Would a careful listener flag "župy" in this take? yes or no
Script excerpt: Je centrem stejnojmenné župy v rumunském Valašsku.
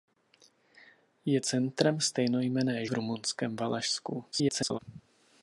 yes